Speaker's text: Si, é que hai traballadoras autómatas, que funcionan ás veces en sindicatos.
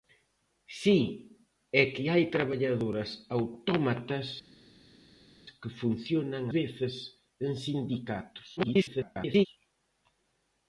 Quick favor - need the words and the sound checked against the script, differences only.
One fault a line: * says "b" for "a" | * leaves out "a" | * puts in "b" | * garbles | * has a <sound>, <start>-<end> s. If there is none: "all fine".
* leaves out "ás"
* garbles